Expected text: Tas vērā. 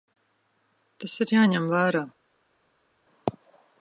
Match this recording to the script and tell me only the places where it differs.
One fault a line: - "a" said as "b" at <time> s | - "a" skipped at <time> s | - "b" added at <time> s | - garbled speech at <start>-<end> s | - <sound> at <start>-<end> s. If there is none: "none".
- "ir jāņem" added at 1.2 s